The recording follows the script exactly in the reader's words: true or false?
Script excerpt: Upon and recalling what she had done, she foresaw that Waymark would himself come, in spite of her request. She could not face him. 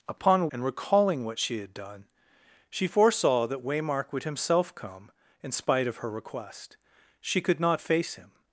true